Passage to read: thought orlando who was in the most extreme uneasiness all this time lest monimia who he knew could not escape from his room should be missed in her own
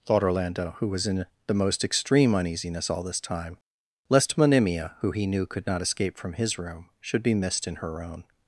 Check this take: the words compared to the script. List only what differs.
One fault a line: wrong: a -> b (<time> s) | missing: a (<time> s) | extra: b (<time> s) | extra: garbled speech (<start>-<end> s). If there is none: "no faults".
no faults